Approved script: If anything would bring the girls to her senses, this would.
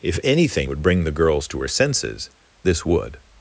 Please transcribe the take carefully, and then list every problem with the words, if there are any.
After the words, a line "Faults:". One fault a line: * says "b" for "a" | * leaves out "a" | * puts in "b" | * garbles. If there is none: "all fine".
If anything would bring the girls to her senses, this would.
Faults:
all fine